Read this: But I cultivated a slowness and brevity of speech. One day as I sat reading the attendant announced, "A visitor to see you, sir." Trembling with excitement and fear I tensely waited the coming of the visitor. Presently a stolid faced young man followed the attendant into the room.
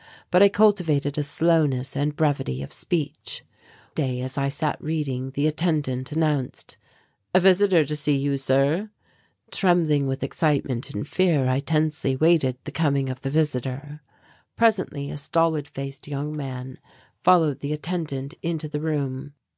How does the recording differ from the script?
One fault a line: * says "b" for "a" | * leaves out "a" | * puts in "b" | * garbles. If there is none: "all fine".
* leaves out "One"